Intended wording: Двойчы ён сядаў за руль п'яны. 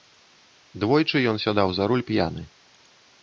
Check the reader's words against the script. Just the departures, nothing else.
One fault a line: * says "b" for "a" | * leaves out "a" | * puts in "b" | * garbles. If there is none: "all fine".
all fine